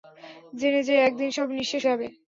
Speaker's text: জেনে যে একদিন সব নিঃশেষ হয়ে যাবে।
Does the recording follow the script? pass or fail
fail